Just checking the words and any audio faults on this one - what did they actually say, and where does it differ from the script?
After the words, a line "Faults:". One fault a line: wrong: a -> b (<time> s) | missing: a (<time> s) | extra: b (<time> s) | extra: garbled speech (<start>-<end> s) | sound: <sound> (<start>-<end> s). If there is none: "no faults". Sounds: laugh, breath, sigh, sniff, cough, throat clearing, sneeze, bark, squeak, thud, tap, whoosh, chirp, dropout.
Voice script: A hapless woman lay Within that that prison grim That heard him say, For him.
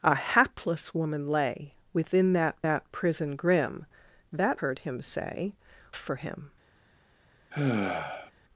A hapless woman lay Within that that prison grim That heard him say, For him.
Faults:
sound: sigh (7.5-8.3 s)